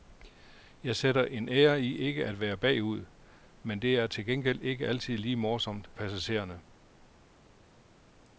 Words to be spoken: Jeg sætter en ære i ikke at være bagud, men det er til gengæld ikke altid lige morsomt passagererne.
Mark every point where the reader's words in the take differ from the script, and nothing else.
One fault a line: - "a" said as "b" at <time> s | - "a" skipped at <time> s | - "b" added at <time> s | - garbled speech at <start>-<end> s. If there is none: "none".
none